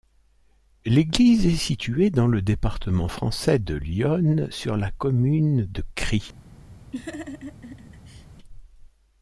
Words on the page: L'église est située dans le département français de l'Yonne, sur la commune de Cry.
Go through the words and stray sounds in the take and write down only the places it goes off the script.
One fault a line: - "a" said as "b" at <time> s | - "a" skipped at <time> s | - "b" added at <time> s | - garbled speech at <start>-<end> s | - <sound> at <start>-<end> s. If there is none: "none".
- laugh at 6.9-8.3 s